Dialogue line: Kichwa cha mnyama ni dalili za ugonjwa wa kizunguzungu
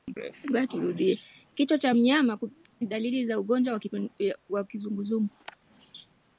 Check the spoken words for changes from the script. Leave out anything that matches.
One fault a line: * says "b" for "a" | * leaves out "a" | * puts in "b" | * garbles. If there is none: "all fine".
all fine